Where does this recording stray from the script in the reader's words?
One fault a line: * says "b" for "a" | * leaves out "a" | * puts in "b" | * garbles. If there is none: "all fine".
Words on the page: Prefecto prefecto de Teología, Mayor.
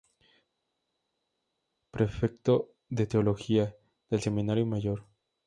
* leaves out "prefecto"
* puts in "del Seminario"